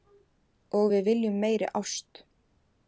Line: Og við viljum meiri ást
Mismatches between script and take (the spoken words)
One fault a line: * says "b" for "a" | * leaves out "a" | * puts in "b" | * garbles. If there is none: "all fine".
all fine